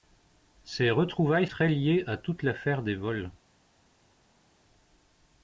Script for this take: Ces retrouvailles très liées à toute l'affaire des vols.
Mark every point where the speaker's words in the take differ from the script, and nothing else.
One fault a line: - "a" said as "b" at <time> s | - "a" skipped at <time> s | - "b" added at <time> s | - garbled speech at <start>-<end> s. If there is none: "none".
none